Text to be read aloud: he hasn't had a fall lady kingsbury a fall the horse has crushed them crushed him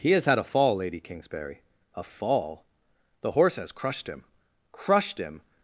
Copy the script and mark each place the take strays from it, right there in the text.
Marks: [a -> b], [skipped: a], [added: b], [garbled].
he [hasn't -> has] had a fall lady kingsbury a fall the horse has crushed [them -> him] crushed him